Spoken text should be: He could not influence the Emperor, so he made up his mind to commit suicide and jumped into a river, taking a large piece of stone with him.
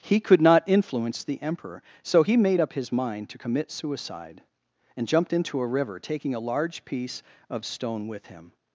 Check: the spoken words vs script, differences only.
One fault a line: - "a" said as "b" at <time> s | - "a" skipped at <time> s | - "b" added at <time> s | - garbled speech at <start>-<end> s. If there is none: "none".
none